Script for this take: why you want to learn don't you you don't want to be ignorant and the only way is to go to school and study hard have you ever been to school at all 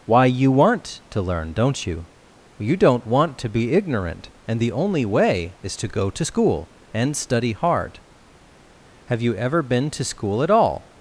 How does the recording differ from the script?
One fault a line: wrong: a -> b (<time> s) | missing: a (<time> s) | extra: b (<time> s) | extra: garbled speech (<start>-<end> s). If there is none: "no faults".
no faults